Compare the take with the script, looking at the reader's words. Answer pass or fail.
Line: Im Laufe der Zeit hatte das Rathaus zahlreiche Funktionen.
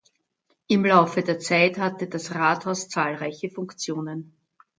pass